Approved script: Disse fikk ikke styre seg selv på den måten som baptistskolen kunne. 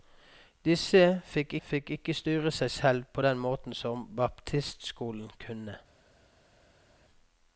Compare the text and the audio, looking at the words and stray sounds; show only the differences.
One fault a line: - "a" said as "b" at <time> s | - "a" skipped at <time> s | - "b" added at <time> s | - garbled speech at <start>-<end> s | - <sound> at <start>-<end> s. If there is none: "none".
- "fikk" added at 1.6 s